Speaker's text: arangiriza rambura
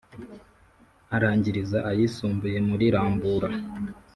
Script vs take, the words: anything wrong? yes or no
yes